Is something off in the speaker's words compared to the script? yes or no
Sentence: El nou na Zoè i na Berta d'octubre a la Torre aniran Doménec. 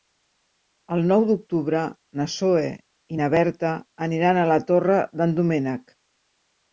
yes